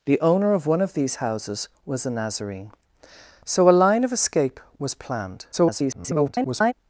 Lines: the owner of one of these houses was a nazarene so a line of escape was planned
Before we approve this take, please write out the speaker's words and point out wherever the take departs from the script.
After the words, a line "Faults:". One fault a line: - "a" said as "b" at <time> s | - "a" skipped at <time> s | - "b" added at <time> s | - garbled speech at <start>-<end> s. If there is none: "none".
the owner of one of these houses was a nazarene so a line of escape was planned [garbled]
Faults:
- garbled speech at 5.5-6.7 s